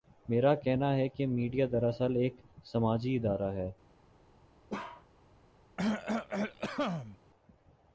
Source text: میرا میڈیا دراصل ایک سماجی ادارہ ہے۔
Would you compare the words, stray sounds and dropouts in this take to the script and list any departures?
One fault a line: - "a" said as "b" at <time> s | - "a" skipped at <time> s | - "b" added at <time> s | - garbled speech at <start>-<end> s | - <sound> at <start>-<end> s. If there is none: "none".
- "کہنا ہے کہ" added at 0.6 s
- bark at 4.7-5.1 s
- cough at 5.8-7.2 s